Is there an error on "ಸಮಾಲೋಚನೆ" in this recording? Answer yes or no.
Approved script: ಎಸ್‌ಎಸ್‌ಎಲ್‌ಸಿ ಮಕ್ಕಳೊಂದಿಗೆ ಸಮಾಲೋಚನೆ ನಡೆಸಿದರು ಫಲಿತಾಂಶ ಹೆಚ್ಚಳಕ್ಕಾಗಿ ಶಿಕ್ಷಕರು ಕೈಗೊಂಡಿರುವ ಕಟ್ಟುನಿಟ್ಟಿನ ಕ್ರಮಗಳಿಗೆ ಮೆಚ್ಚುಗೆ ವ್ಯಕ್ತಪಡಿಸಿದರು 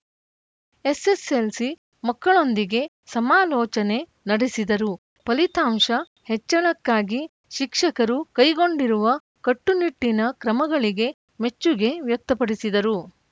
no